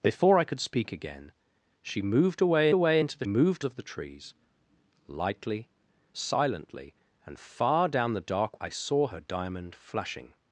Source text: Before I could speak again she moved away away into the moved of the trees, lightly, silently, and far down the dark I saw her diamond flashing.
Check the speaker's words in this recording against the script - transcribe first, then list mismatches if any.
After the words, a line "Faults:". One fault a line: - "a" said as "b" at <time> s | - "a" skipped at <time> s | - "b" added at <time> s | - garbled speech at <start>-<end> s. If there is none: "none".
Before I could speak again she moved away away into the moved of the trees, lightly, silently, and far down the dark I saw her diamond flashing.
Faults:
none